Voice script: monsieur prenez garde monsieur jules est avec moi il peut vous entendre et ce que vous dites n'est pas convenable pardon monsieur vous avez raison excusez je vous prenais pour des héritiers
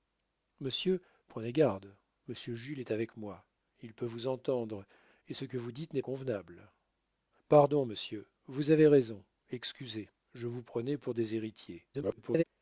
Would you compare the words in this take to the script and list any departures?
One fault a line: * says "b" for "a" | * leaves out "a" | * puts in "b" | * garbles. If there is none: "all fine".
* leaves out "pas"
* garbles